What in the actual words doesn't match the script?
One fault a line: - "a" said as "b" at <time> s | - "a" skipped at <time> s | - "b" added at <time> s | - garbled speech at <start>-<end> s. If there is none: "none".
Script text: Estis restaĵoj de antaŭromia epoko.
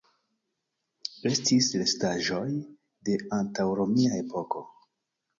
none